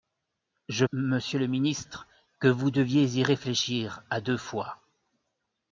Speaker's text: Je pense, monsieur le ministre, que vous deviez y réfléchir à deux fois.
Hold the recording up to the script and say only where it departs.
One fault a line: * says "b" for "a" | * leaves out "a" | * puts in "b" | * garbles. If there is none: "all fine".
* leaves out "pense"